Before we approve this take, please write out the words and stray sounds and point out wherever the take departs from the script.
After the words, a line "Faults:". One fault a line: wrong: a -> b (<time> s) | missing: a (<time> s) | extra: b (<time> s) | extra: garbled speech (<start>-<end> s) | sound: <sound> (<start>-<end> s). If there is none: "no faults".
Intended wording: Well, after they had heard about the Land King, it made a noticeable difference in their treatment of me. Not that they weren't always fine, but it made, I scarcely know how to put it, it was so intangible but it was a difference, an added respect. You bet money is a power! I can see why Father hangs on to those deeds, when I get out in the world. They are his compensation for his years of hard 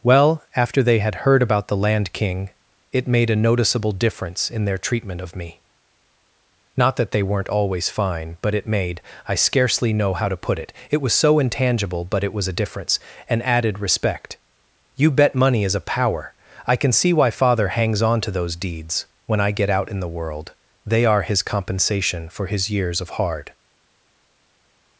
Well, after they had heard about the Land King, it made a noticeable difference in their treatment of me. Not that they weren't always fine, but it made, I scarcely know how to put it, it was so intangible but it was a difference, an added respect. You bet money is a power! I can see why Father hangs on to those deeds, when I get out in the world. They are his compensation for his years of hard
Faults:
no faults